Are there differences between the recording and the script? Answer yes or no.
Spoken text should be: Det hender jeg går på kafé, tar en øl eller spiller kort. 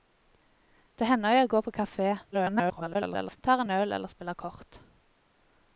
yes